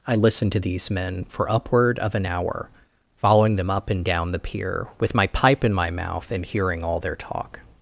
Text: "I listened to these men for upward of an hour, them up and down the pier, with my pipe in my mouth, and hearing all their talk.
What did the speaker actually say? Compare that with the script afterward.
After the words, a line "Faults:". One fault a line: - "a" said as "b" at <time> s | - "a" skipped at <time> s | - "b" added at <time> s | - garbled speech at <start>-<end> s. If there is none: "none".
"I listened to these men for upward of an hour, following them up and down the pier, with my pipe in my mouth, and hearing all their talk.
Faults:
- "following" added at 3.1 s